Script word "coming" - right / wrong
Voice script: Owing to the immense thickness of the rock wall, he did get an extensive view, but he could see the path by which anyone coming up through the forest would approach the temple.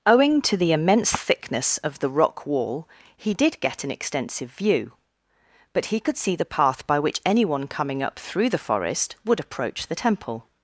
right